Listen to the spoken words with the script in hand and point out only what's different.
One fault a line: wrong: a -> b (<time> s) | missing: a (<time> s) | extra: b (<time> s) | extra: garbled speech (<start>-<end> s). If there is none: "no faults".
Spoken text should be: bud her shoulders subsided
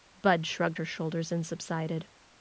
extra: shrugged (0.5 s)
extra: and (1.3 s)